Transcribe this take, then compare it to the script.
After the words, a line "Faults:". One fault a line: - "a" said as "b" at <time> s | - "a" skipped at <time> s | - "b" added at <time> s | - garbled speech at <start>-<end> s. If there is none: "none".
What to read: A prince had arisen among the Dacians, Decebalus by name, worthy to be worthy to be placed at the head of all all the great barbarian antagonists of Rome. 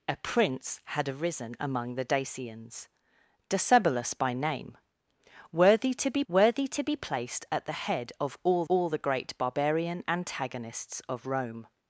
A prince had arisen among the Dacians, Decebalus by name, worthy to be worthy to be placed at the head of all all the great barbarian antagonists of Rome.
Faults:
none